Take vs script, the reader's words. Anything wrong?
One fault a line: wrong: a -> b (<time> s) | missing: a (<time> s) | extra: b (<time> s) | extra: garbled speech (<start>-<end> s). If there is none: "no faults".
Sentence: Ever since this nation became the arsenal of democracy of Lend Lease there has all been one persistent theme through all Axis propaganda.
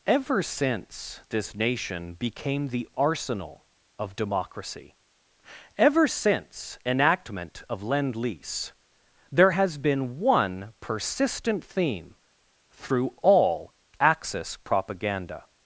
extra: ever since enactment (5.8 s)
missing: all (9.8 s)